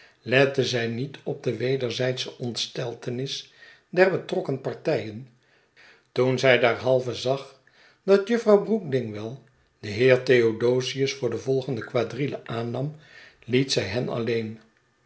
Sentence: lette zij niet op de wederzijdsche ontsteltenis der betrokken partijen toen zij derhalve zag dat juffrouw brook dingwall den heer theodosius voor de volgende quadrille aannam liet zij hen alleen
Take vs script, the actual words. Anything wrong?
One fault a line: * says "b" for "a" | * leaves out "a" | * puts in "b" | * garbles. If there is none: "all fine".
all fine